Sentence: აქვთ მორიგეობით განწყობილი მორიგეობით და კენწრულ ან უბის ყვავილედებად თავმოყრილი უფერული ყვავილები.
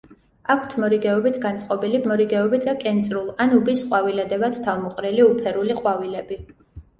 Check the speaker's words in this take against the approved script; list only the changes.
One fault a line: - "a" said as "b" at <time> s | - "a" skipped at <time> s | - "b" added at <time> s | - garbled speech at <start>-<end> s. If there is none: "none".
none